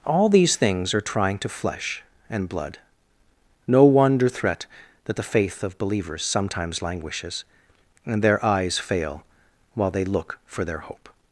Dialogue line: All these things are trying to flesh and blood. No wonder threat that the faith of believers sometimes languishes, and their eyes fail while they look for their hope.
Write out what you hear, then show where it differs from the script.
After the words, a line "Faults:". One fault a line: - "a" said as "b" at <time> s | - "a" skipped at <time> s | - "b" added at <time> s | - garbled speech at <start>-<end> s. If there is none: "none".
All these things are trying to flesh and blood. No wonder threat that the faith of believers sometimes languishes, and their eyes fail while they look for their hope.
Faults:
none